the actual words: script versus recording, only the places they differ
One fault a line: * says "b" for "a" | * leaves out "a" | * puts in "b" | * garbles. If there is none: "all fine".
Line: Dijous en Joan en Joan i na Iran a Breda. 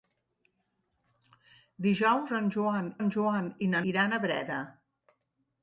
all fine